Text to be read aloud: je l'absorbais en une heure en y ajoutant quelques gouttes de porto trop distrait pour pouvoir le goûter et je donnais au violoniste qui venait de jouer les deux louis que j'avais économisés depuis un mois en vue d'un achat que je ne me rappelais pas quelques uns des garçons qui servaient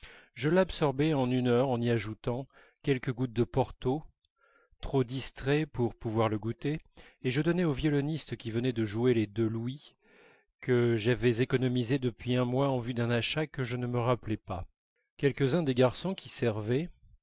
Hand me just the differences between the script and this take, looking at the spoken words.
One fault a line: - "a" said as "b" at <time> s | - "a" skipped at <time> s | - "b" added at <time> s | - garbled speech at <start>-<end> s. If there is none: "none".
none